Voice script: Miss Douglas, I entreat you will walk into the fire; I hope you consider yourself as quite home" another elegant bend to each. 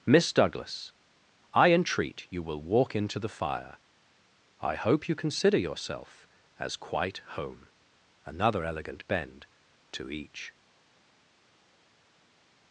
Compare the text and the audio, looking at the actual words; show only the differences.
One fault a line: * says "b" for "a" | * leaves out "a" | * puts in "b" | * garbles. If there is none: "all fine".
all fine